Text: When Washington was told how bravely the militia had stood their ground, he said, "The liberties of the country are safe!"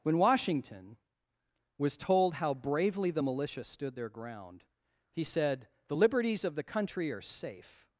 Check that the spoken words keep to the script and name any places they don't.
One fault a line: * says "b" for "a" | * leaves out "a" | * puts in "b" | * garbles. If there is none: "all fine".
* leaves out "had"